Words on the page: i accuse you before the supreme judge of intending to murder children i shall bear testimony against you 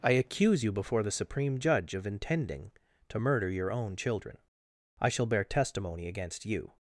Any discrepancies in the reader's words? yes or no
yes